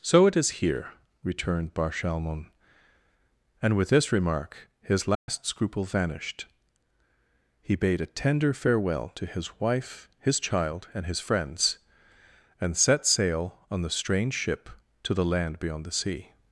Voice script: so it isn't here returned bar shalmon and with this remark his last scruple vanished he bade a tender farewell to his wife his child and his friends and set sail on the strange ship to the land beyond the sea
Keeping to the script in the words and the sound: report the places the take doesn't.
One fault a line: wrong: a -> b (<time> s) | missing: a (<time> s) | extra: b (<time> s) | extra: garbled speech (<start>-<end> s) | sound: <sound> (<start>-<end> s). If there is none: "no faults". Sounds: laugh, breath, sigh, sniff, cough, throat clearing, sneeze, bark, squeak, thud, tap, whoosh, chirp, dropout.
wrong: isn't -> is (0.3 s)
sound: dropout (5.1-5.3 s)